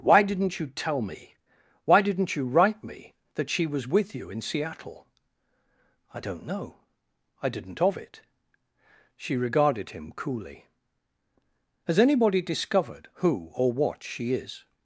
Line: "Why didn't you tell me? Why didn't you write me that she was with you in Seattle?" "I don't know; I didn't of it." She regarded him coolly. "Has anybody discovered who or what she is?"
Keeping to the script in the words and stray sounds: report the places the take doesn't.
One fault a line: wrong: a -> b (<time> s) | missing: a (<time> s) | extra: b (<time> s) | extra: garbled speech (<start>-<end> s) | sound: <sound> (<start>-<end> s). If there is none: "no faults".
no faults